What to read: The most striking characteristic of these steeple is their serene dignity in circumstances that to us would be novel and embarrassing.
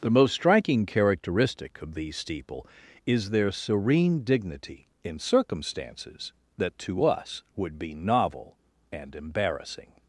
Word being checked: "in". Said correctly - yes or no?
yes